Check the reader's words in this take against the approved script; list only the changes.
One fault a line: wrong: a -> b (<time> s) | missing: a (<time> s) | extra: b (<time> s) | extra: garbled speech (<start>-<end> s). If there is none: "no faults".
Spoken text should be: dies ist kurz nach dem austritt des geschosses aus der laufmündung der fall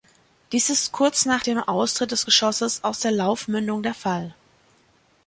no faults